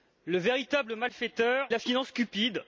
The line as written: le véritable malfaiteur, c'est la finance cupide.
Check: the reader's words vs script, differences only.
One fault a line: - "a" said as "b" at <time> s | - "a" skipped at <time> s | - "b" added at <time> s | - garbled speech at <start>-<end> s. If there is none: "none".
- "c'est" skipped at 1.7 s